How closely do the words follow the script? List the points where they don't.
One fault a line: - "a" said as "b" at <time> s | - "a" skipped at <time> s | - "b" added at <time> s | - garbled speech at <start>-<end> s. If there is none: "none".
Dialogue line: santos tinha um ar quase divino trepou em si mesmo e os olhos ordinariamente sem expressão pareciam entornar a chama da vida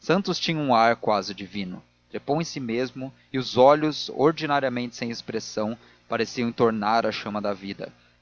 none